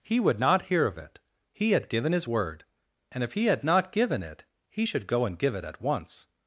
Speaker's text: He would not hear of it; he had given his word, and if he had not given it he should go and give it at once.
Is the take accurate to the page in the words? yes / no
yes